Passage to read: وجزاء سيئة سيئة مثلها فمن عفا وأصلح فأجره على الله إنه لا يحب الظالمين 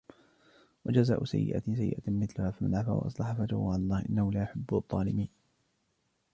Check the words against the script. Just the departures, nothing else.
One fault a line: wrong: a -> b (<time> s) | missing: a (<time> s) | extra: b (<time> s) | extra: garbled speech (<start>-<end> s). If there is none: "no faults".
no faults